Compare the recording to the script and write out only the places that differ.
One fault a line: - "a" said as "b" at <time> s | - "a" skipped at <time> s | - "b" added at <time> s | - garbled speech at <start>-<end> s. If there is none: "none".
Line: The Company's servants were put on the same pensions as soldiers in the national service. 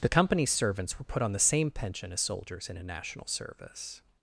- "pensions" said as "pension" at 1.7 s
- "the" said as "a" at 2.8 s